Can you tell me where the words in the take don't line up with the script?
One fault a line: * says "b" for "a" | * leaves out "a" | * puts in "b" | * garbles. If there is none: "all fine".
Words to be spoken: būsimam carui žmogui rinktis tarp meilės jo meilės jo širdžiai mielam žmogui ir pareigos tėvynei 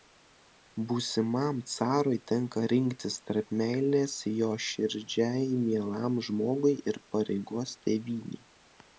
* says "tenka" for "žmogui"
* leaves out "meilės jo"